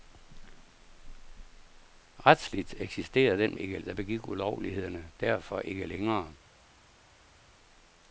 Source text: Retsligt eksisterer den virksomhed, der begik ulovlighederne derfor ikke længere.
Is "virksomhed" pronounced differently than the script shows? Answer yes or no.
yes